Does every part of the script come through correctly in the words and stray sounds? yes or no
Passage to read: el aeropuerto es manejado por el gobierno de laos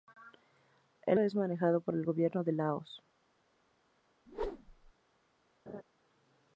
no